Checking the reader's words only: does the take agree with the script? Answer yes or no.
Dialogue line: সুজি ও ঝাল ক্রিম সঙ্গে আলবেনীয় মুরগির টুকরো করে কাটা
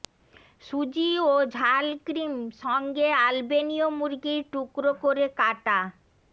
yes